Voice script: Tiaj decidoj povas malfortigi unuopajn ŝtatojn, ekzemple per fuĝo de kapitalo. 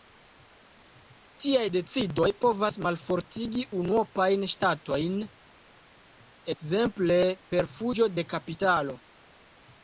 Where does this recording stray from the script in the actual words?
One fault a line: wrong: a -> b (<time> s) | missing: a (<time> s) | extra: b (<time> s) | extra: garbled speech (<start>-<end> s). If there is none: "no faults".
no faults